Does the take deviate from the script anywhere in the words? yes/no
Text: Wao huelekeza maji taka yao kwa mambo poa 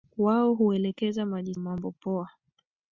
yes